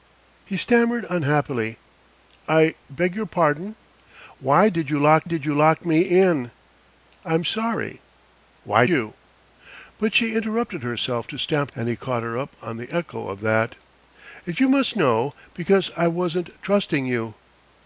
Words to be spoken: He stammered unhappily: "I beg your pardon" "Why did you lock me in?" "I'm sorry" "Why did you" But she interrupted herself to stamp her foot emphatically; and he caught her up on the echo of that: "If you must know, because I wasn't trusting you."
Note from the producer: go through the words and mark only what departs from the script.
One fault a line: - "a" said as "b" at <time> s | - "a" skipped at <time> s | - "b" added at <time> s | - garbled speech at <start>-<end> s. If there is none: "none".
- "did you lock" added at 5.2 s
- "did" skipped at 8.9 s
- "her foot emphatically" skipped at 11.7 s